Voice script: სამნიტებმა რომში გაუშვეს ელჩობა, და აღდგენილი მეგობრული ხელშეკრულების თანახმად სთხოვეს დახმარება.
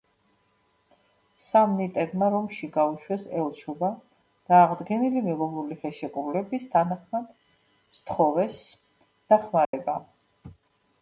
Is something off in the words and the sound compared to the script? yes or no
yes